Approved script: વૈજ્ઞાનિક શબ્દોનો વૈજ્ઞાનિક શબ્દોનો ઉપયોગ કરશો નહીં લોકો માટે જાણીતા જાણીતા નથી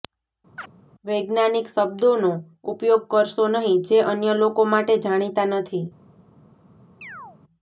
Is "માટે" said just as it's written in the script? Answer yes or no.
yes